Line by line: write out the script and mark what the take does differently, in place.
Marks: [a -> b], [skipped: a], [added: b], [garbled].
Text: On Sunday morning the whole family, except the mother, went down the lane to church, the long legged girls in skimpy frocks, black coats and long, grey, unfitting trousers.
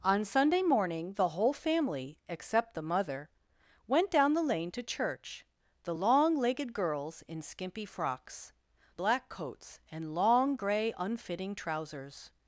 On Sunday morning the whole family, except the mother, went down the lane to church, the long legged girls in skimpy frocks, black coats and long, grey, unfitting trousers.